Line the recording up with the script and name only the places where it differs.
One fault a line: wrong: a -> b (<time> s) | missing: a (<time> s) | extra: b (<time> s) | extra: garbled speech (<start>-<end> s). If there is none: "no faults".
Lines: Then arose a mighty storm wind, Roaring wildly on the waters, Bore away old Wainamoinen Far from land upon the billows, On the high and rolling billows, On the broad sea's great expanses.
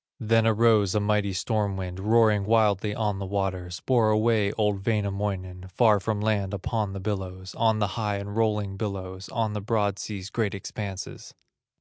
no faults